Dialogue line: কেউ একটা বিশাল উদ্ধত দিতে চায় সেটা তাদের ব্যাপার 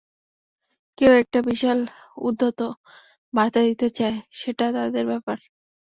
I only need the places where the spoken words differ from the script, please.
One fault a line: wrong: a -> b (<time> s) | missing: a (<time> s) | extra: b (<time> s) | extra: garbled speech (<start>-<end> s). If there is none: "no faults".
extra: বার্তা (3.3 s)